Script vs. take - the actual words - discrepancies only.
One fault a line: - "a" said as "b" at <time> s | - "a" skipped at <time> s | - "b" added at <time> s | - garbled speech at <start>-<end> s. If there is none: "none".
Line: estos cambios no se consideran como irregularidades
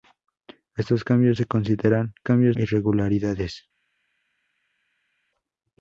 - "no" skipped at 1.4 s
- "como" said as "cambios" at 2.2 s